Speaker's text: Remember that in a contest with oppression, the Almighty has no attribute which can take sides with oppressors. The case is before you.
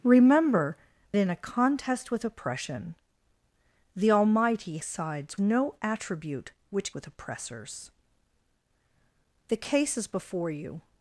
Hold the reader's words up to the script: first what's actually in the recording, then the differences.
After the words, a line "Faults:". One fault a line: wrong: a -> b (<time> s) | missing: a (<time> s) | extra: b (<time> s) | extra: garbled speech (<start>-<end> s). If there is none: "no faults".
Remember in a contest with oppression, the Almighty sides no attribute which with oppressors. The case is before you.
Faults:
missing: that (0.8 s)
wrong: has -> sides (4.8 s)
missing: can take sides (6.9 s)